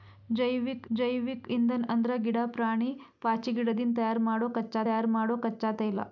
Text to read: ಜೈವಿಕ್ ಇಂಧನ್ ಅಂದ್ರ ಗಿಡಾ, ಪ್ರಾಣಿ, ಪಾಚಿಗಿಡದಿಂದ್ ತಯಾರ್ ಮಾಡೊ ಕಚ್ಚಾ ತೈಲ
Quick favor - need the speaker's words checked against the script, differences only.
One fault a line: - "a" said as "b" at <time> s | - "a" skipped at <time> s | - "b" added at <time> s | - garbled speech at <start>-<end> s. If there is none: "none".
- "ಜೈವಿಕ್" added at 0.9 s
- "ತಯಾರ್ ಮಾಡೊ ಕಚ್ಚಾ" added at 4.8 s